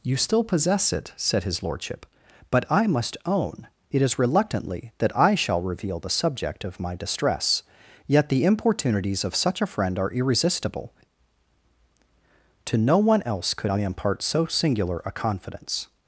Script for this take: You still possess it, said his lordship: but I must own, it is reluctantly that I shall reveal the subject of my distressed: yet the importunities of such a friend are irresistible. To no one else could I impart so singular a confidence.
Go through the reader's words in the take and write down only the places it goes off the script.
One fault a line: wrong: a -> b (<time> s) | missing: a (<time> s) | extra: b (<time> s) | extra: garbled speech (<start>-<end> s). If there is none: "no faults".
wrong: distressed -> distress (7.0 s)